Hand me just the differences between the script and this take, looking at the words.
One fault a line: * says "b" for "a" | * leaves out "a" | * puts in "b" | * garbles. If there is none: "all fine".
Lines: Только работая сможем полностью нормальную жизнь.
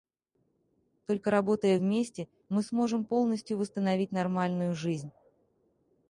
* puts in "вместе мы"
* puts in "восстановить"